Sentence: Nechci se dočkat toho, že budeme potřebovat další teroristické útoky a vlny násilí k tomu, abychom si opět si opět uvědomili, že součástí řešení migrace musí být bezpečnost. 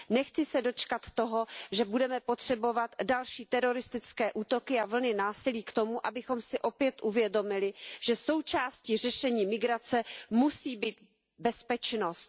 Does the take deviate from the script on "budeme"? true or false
false